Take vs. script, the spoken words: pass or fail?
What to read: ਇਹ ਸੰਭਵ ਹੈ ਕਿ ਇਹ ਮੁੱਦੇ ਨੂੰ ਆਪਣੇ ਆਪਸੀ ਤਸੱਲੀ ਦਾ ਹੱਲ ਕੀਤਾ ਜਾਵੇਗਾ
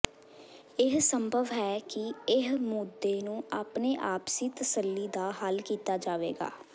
pass